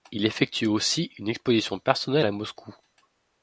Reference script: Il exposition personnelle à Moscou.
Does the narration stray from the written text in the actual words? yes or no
yes